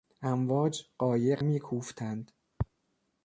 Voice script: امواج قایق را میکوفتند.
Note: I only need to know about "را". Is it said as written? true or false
false